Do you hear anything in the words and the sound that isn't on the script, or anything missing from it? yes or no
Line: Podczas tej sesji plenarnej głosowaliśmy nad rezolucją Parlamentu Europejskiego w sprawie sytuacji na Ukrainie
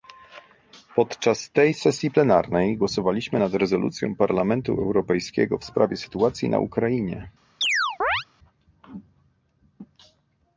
yes